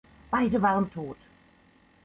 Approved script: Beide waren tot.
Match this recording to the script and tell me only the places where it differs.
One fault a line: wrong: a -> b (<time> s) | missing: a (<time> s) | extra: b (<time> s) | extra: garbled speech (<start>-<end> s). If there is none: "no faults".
no faults